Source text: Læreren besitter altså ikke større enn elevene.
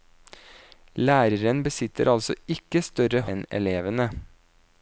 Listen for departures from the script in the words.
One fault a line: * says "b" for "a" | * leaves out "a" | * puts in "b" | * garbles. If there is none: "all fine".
all fine